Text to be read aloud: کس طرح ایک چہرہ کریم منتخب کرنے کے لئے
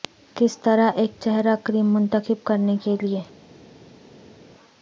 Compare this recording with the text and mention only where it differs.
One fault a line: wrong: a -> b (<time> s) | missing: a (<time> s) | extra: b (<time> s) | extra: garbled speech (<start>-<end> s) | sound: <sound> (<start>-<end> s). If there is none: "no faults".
no faults